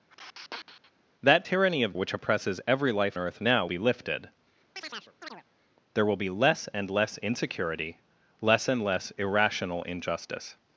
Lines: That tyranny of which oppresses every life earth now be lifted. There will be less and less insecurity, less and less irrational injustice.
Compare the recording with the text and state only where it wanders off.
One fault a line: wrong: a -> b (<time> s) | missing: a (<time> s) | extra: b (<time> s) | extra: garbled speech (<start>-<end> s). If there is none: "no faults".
no faults